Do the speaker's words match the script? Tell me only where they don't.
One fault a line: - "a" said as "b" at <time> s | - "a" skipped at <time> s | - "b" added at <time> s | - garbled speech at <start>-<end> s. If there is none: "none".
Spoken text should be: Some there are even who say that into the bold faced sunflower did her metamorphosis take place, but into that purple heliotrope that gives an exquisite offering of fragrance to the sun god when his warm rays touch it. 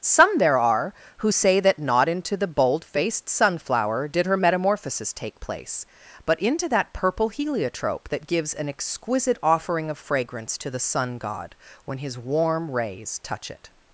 - "even" skipped at 0.9 s
- "not" added at 1.8 s